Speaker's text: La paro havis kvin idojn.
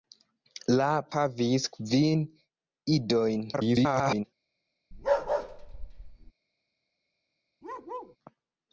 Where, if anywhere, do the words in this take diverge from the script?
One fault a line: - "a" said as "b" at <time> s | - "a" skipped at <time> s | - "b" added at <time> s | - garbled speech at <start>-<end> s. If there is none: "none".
- "paro" skipped at 0.8 s
- garbled speech at 3.5-4.3 s